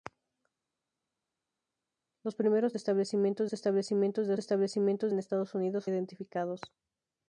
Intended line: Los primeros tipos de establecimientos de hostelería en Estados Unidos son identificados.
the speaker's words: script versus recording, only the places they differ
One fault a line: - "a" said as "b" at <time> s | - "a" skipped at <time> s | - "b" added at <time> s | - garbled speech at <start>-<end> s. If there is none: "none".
- "tipos" said as "establecimientos" at 2.8 s
- "hostelería" said as "establecimientos" at 4.4 s
- "son" skipped at 5.9 s